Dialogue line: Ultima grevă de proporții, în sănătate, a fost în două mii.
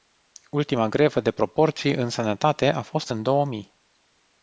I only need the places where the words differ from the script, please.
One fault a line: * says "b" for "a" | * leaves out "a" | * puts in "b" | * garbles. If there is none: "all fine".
all fine